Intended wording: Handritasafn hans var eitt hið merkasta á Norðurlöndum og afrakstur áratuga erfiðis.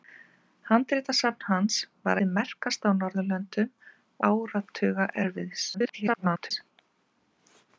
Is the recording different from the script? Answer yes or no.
yes